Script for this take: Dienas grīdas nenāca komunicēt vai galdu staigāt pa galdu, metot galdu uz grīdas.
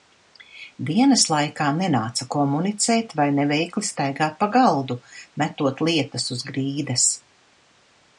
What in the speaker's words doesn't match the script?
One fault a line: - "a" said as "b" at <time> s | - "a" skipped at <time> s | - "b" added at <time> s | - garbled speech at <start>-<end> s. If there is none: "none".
- "grīdas" said as "laikā" at 1.3 s
- "galdu" said as "neveikli" at 3.4 s
- "galdu" said as "lietas" at 5.9 s